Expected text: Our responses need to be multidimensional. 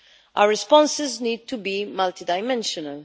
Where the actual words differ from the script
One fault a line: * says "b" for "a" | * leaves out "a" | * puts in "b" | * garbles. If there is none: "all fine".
all fine